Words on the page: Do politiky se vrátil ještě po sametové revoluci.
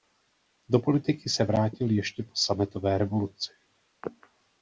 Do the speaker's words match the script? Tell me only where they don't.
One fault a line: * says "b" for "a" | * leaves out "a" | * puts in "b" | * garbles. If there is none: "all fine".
all fine